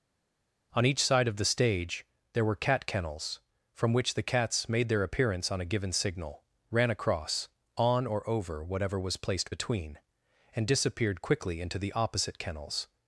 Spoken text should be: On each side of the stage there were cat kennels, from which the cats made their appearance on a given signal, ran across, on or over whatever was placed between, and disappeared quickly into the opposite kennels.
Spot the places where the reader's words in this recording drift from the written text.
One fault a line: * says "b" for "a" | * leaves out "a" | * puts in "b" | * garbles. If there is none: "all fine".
all fine